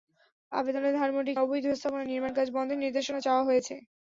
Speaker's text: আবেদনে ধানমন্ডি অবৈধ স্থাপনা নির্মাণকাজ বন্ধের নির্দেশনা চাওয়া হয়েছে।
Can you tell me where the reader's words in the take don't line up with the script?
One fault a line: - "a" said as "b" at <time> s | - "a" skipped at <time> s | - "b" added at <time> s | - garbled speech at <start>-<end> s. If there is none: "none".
none